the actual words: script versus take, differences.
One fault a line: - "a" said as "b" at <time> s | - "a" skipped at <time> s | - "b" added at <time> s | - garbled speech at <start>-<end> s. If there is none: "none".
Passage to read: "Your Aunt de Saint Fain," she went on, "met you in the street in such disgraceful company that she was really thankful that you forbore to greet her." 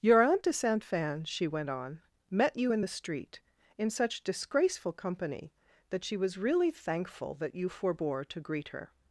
none